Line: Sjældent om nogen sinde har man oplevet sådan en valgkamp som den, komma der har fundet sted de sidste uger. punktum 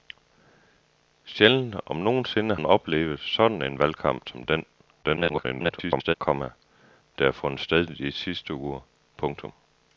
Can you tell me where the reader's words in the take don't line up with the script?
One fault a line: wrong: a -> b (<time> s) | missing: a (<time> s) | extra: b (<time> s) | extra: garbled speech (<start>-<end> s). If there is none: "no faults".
missing: har (2.5 s)
extra: garbled speech (5.0-6.1 s)